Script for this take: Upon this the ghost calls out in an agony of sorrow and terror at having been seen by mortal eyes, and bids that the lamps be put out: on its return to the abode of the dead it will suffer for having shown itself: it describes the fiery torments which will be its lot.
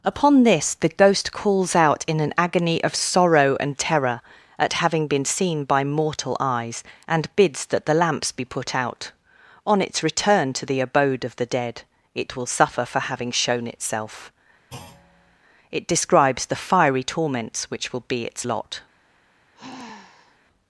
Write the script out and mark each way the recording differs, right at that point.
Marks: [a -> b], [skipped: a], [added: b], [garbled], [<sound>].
Upon this the ghost calls out in an agony of sorrow and terror at having been seen by mortal eyes, and bids that the lamps be put out: on its return to the abode of the dead it will suffer for having shown itself: [thud] it describes the fiery torments which will be its lot. [sigh]